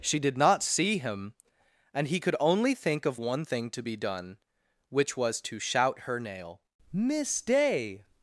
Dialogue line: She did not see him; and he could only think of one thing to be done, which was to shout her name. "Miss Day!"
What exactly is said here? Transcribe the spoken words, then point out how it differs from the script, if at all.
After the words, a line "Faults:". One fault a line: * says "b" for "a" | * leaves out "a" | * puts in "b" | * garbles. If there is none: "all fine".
She did not see him; and he could only think of one thing to be done, which was to shout her nail. "Miss Day!"
Faults:
* says "nail" for "name"